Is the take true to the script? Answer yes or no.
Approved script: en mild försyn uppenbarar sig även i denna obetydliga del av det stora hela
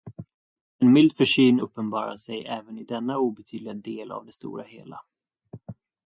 yes